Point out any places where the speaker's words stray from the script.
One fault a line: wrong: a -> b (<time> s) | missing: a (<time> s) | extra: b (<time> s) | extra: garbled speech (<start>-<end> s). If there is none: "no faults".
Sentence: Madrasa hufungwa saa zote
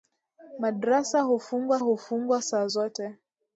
extra: hufungwa (1.8 s)